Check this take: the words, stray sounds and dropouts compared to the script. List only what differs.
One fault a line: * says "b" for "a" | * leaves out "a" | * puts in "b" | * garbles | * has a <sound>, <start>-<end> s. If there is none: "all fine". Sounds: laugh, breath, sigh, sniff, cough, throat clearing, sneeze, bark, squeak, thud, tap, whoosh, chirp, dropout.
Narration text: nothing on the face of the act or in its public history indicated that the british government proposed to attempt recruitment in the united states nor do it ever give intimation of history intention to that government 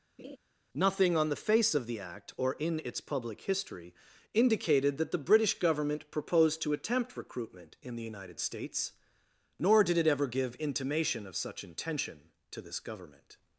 * has a laugh, 0.2-0.4 s
* says "did" for "do"
* says "such" for "history"
* says "this" for "that"